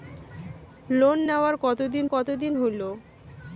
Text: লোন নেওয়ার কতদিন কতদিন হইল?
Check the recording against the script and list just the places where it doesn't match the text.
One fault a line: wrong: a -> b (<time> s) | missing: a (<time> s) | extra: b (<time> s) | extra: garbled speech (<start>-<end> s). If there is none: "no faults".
no faults